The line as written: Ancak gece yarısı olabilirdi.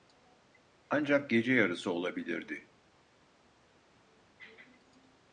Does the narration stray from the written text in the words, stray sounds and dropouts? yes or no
no